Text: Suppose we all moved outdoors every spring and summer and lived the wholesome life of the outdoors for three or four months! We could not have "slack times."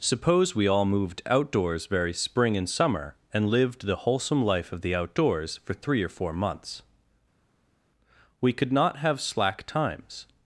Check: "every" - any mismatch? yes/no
yes